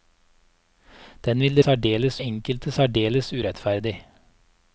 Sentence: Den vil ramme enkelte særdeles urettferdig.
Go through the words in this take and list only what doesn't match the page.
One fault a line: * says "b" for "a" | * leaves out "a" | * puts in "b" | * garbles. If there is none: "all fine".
* says "særdeles" for "ramme"